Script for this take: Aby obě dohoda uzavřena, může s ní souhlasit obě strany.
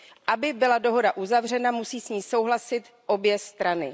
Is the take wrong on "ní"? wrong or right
right